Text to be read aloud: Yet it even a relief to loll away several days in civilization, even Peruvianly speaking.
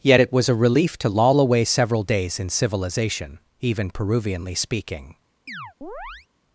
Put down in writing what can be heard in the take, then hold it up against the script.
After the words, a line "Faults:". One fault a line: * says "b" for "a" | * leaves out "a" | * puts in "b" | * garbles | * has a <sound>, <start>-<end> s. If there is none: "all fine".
Yet it was a relief to loll away several days in civilization, even Peruvianly speaking.
Faults:
* says "was" for "even"
* has a chirp, 5.5-6.3 s